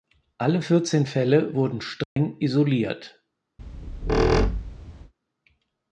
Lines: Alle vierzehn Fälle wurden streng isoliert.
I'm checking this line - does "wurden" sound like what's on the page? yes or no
yes